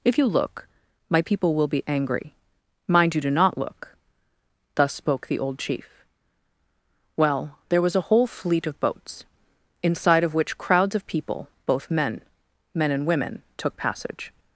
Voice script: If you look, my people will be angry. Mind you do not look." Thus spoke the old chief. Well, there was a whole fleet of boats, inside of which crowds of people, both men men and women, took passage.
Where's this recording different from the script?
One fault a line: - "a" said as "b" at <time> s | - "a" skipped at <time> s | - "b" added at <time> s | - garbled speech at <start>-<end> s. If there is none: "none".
none